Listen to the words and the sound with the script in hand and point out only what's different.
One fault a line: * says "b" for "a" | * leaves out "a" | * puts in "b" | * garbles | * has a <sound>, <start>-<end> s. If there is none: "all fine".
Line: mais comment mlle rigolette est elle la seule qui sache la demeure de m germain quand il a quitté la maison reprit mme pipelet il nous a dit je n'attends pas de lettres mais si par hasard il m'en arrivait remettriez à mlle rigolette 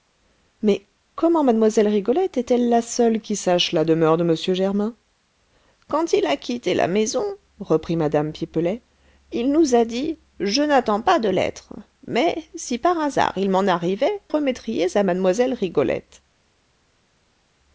all fine